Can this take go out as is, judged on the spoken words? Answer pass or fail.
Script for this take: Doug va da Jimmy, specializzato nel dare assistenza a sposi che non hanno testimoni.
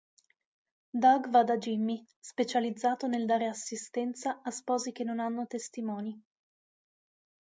pass